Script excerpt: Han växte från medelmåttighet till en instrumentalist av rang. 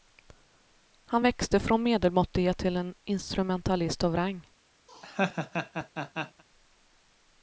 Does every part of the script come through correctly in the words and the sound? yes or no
no